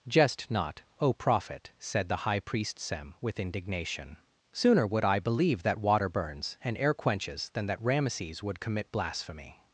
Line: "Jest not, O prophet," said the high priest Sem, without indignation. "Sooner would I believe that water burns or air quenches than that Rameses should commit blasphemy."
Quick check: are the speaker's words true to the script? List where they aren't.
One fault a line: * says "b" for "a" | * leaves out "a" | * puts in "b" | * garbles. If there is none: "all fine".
* says "with" for "without"
* says "and" for "or"
* says "would" for "should"